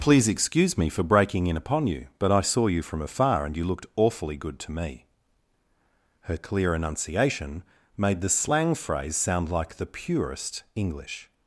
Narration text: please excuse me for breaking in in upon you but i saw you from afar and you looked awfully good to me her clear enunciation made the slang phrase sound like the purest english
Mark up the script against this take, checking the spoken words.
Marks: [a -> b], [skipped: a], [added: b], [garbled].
please excuse me for breaking in [skipped: in] upon you but i saw you from afar and you looked awfully good to me her clear enunciation made the slang phrase sound like the purest english